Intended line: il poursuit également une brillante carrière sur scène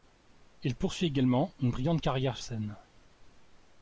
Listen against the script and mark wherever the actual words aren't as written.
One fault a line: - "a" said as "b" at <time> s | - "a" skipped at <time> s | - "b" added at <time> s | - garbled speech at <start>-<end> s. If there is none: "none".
- "sur" skipped at 2.4 s